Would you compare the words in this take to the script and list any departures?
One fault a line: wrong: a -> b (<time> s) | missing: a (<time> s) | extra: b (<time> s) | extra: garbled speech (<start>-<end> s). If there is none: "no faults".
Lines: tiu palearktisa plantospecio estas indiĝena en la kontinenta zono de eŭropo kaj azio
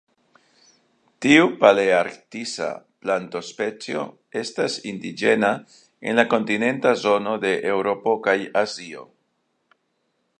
no faults